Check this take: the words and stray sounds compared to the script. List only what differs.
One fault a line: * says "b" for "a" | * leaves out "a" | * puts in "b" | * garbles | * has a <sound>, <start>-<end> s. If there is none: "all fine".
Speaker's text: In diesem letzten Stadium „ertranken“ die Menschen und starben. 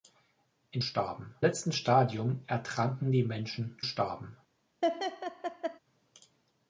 * says "starben" for "diesem"
* leaves out "und"
* has a laugh, 4.8-5.8 s